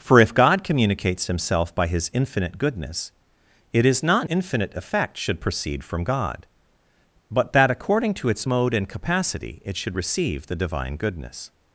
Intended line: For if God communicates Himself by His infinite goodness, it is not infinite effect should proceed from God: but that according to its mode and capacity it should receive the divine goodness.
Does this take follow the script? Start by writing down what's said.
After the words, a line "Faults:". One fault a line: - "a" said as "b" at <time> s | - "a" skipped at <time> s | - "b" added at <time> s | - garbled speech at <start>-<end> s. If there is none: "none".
For if God communicates Himself by His infinite goodness, it is not infinite effect should proceed from God: but that according to its mode and capacity it should receive the divine goodness.
Faults:
none